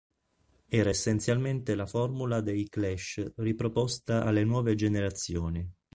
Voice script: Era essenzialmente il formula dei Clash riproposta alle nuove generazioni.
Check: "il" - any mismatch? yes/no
yes